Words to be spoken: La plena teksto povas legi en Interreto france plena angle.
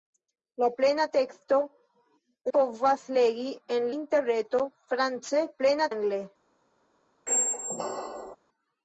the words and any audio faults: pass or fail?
fail